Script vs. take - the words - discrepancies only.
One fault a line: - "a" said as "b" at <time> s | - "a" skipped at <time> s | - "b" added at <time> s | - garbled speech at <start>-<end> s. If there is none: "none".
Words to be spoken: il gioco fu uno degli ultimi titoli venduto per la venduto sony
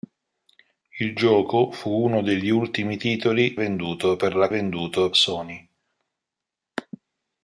none